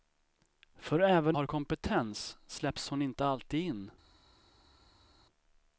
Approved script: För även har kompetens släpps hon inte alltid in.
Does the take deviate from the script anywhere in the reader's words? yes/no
no